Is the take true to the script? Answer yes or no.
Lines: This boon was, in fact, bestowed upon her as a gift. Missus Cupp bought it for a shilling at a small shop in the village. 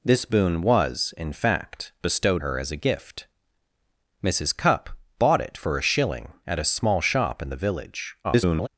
no